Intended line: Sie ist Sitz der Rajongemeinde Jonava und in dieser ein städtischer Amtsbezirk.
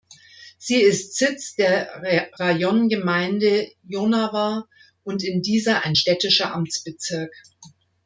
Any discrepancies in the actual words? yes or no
no